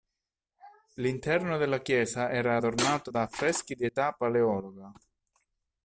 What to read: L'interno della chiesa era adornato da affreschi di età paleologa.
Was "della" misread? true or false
false